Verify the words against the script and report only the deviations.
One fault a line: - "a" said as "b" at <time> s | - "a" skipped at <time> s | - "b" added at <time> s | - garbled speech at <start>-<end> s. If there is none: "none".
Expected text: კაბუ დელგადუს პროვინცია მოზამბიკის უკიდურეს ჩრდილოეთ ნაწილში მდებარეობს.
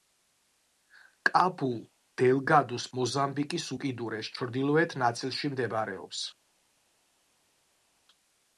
- "პროვინცია" skipped at 2.9 s